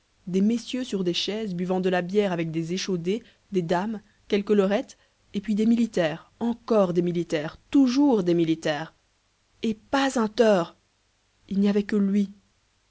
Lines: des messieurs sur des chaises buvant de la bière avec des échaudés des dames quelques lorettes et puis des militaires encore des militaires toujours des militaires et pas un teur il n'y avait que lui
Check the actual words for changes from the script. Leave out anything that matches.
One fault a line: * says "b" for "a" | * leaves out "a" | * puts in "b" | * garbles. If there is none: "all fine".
all fine